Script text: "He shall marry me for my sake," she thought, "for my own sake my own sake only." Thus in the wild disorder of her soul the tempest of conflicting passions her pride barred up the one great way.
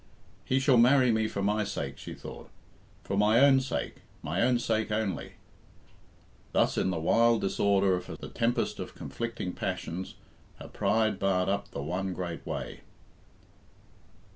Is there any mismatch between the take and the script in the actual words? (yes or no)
yes